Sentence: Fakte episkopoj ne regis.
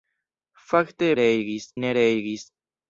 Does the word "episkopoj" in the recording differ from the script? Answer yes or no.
yes